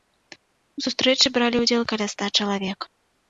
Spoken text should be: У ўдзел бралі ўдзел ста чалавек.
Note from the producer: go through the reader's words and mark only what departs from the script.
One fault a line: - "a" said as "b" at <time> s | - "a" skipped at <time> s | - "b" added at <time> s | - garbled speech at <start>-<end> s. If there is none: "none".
- "ўдзел" said as "сустрэчы" at 0.8 s
- "каля" added at 1.9 s